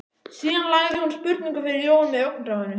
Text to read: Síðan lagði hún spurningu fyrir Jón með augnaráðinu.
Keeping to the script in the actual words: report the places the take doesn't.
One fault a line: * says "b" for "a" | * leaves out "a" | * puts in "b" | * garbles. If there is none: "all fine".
all fine